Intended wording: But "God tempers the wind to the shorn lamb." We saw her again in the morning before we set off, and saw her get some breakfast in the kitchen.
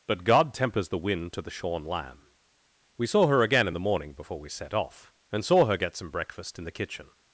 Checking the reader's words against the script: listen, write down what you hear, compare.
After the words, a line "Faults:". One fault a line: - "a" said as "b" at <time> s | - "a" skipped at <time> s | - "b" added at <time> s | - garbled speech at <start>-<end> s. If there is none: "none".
But "God tempers the wind to the shorn lamb." We saw her again in the morning before we set off, and saw her get some breakfast in the kitchen.
Faults:
none